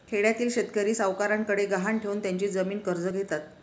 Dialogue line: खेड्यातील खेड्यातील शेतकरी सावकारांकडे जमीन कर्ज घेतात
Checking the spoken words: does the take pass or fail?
fail